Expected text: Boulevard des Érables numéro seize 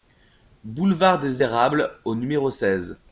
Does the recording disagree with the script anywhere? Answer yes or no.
yes